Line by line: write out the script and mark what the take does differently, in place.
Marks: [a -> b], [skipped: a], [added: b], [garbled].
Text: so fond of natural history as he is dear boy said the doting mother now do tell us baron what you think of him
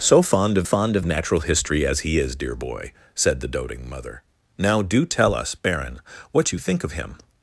so fond of [added: fond of] natural history as he is dear boy said the doting mother now do tell us baron what you think of him